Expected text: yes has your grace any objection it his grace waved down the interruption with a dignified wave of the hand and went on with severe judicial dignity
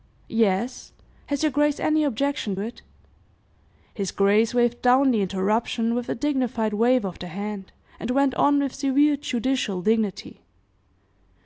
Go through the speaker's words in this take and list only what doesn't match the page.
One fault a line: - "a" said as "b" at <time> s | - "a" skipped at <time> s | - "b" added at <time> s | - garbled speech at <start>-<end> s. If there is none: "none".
none